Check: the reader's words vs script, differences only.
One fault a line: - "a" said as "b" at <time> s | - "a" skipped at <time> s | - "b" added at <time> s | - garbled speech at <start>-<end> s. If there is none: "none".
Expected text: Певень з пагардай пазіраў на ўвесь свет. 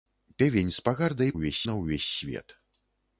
- "пазіраў" said as "ўвесь" at 1.4 s